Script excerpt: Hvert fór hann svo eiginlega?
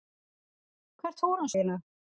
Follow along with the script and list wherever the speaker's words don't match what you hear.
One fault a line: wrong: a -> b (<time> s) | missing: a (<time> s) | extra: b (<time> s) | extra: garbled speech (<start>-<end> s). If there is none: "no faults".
missing: svo (1.6 s)